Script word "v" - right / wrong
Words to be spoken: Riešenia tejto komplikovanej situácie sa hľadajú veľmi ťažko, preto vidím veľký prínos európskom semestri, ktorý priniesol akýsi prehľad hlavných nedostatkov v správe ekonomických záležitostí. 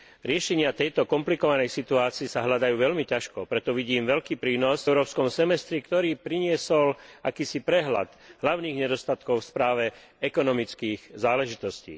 right